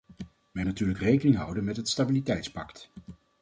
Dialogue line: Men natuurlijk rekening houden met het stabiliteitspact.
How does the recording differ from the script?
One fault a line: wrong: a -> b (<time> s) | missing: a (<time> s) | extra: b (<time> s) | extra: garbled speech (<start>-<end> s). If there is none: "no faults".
no faults